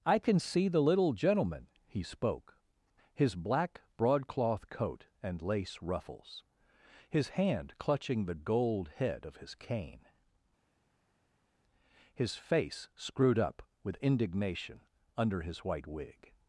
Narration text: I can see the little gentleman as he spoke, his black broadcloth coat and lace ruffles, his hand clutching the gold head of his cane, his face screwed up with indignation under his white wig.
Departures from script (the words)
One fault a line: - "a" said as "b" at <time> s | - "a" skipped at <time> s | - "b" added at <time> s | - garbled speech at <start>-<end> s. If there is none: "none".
- "as" skipped at 1.7 s